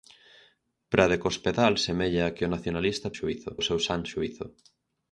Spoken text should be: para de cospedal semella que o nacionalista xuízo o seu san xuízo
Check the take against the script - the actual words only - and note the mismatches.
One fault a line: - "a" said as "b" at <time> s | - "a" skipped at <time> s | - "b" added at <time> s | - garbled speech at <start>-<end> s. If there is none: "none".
none